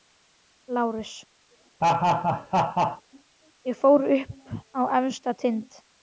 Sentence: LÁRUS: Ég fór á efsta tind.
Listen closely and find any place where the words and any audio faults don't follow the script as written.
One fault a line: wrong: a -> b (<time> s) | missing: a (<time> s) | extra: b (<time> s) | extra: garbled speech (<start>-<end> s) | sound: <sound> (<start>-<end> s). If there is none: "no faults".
sound: laugh (1.8-3.0 s)
extra: upp (4.2 s)